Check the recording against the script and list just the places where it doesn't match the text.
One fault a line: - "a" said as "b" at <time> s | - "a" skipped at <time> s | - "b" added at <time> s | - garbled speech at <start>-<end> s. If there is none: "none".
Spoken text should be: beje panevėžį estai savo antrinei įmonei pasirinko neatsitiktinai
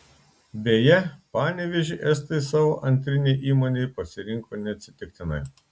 none